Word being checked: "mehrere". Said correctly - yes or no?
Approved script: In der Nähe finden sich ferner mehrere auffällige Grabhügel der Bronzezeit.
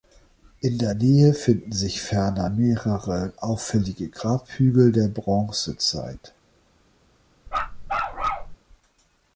yes